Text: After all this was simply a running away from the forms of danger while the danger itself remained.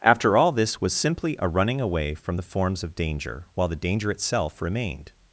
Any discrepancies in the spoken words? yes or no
no